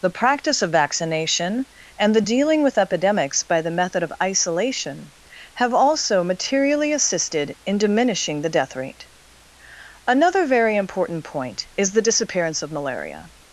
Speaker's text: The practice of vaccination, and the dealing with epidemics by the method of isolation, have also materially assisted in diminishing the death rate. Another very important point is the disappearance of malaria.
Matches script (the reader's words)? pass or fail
pass